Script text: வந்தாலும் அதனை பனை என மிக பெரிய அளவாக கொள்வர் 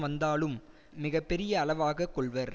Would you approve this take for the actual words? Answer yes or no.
no